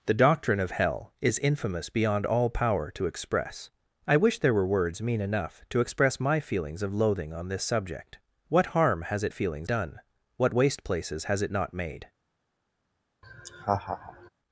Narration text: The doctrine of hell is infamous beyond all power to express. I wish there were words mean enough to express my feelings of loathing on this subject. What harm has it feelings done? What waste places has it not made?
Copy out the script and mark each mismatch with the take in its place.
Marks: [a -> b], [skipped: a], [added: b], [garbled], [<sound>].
The doctrine of hell is infamous beyond all power to express. I wish there were words mean enough to express my feelings of loathing on this subject. What harm has it feelings done? What waste places has it not made? [laugh]